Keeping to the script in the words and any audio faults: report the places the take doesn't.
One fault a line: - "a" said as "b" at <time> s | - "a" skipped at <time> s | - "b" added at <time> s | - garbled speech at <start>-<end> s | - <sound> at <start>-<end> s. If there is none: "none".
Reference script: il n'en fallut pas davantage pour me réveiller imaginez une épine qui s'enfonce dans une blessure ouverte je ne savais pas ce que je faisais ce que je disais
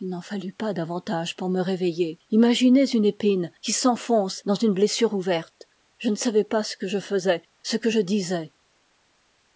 none